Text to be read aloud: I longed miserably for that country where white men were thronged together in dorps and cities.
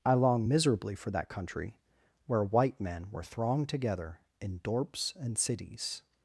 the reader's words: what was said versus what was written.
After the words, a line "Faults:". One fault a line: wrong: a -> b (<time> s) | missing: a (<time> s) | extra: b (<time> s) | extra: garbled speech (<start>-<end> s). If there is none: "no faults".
I long miserably for that country where white men were thronged together in dorps and cities.
Faults:
wrong: longed -> long (0.1 s)